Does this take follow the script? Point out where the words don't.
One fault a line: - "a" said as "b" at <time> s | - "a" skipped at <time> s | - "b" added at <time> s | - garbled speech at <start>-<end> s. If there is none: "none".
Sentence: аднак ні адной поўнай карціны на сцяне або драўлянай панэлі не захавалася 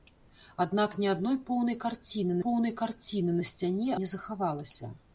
- "поўнай карціны" added at 2.4 s
- "або драўлянай панэлі" skipped at 3.9 s